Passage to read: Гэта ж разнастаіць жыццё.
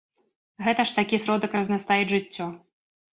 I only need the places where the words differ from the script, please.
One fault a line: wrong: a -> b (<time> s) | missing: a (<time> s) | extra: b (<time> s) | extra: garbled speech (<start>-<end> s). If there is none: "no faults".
extra: такі сродак (1.0 s)